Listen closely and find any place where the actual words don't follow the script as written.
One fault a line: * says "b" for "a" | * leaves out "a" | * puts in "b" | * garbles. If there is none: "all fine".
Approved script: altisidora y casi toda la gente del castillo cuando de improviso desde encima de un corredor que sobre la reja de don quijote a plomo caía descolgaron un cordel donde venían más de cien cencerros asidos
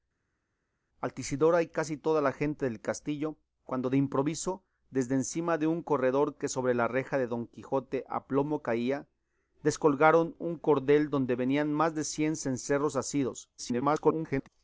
* garbles